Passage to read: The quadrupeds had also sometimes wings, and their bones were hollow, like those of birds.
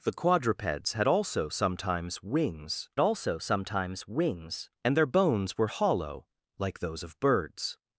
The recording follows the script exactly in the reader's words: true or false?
false